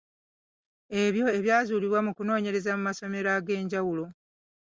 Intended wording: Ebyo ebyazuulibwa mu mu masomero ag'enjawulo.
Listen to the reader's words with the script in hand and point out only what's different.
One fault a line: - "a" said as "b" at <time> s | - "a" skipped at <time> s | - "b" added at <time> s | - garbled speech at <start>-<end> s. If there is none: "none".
- "kunoonyereza" added at 2.2 s